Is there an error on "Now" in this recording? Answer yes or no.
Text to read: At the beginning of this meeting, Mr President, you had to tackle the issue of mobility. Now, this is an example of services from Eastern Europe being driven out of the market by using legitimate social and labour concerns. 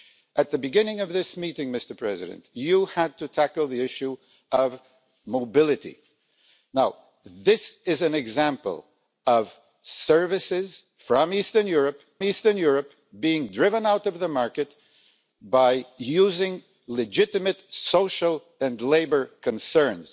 no